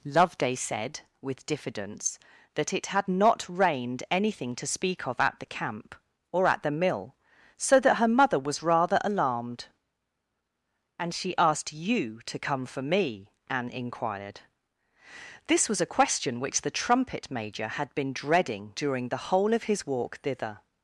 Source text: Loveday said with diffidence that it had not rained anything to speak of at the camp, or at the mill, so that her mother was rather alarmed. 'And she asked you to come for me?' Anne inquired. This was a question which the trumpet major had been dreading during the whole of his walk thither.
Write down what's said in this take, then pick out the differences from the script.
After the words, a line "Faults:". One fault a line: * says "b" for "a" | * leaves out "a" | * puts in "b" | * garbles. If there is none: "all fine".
Loveday said with diffidence that it had not rained anything to speak of at the camp, or at the mill, so that her mother was rather alarmed. 'And she asked you to come for me?' Anne inquired. This was a question which the trumpet major had been dreading during the whole of his walk thither.
Faults:
all fine